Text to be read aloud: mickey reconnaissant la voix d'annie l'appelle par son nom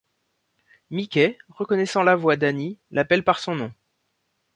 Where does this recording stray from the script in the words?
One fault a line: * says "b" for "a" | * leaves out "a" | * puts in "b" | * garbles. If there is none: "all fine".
all fine